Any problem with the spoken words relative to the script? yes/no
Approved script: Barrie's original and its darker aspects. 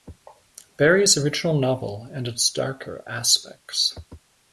yes